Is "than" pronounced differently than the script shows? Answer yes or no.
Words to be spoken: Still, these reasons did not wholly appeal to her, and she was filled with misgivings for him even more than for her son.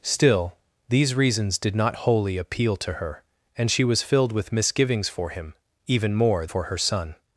yes